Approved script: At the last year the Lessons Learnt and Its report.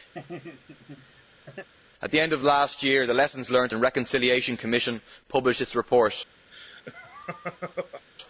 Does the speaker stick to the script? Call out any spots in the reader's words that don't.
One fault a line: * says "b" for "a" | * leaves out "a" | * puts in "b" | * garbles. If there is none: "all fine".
* puts in "end of"
* puts in "Reconciliation Commission published"